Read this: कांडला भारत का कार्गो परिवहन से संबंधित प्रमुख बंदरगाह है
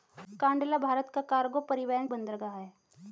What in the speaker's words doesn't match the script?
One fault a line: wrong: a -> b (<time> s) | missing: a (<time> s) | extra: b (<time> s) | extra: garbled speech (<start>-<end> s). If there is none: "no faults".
missing: से संबंधित प्रमुख (2.1 s)